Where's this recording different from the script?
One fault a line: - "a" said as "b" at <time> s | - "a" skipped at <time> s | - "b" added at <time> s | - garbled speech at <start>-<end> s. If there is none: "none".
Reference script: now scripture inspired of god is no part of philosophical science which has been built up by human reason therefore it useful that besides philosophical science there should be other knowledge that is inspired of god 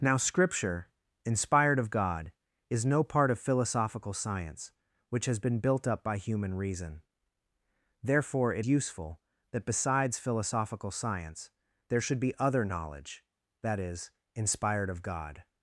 none